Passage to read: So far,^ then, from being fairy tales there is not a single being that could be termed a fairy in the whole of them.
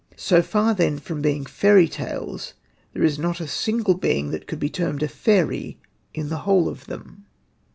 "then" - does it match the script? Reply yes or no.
yes